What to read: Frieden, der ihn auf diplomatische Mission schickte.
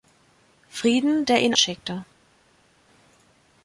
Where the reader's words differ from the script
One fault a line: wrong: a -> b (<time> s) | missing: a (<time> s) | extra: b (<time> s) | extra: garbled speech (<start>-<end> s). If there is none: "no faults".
missing: auf diplomatische Mission (1.5 s)